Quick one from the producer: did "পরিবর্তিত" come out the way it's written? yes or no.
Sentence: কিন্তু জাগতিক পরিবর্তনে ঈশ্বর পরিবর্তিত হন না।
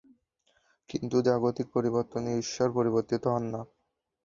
yes